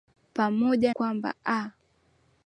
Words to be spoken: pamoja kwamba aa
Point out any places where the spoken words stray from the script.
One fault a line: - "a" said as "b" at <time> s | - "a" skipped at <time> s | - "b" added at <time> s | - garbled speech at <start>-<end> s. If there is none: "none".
none